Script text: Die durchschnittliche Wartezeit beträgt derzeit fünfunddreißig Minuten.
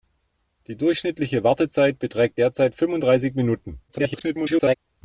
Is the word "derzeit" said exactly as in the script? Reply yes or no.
yes